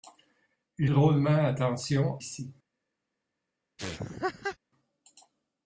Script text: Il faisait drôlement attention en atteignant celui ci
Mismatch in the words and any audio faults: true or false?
true